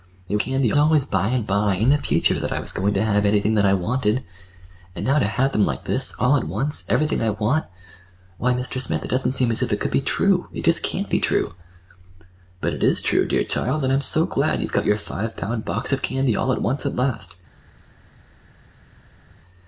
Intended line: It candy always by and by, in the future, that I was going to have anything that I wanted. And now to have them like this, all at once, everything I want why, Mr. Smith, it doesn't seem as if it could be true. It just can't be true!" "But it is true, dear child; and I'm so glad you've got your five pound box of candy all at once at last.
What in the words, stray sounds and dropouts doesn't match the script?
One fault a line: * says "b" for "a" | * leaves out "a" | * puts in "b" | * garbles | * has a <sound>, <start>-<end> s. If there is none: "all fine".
all fine